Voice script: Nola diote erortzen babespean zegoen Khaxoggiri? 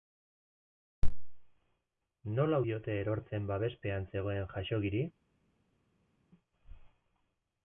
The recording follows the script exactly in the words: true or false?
true